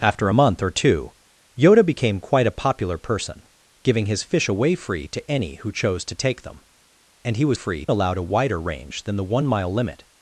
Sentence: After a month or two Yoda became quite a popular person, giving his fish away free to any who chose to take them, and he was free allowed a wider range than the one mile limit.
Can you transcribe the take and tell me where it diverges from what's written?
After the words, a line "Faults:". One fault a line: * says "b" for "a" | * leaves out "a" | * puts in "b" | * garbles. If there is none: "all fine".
After a month or two Yoda became quite a popular person, giving his fish away free to any who chose to take them, and he was free allowed a wider range than the one mile limit.
Faults:
all fine